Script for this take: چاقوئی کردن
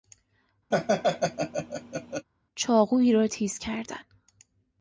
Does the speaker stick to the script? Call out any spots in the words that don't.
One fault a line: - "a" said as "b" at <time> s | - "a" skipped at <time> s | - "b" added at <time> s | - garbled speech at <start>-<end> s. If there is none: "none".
- "را تیز" added at 3.1 s